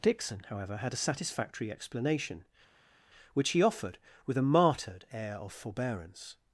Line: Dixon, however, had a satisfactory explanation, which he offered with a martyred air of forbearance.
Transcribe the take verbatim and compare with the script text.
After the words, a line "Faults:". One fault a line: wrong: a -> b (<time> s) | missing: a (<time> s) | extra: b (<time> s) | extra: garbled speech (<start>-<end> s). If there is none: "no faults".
Dixon, however, had a satisfactory explanation, which he offered with a martyred air of forbearance.
Faults:
no faults